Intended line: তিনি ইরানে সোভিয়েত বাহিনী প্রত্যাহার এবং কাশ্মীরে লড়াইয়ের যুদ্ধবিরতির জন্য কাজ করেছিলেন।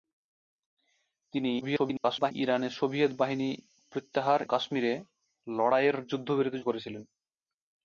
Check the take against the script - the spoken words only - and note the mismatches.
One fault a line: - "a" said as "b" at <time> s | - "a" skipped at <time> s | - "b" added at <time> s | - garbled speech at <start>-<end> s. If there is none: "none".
- garbled speech at 1.6-2.3 s
- "এবং" skipped at 4.4 s
- "জন্য কাজ" skipped at 6.6 s